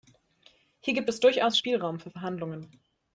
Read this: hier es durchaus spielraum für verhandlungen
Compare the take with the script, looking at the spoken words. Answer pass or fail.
fail